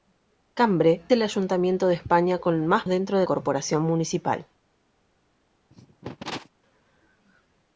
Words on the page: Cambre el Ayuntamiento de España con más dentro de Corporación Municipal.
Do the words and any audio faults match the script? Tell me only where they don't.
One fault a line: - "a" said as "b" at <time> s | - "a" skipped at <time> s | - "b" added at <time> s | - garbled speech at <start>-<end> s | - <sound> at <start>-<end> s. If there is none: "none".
- cough at 5.7-6.5 s